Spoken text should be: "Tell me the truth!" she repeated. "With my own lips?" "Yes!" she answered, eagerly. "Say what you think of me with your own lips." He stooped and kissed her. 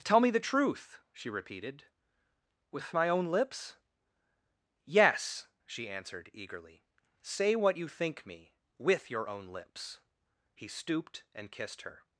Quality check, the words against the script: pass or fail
fail